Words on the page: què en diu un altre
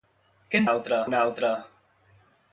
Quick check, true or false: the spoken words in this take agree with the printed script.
false